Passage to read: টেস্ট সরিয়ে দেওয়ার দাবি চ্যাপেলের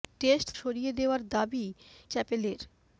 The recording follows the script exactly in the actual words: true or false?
true